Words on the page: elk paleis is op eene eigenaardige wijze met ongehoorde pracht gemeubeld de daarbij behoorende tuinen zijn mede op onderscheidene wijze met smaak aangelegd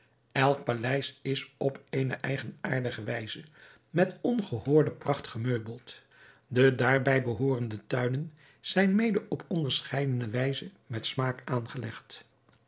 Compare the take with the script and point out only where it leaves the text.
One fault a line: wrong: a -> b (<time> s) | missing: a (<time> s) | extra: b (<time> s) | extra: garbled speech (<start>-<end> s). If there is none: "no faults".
no faults